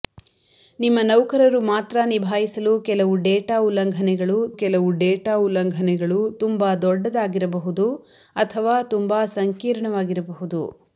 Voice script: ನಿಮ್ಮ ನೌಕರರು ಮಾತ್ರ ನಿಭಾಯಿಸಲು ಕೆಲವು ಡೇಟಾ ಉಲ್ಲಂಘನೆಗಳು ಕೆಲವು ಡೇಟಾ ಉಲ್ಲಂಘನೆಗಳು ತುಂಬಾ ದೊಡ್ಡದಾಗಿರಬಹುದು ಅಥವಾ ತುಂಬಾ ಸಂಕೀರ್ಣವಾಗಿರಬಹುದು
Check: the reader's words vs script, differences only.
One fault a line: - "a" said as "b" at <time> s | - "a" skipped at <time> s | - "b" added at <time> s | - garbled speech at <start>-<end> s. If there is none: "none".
none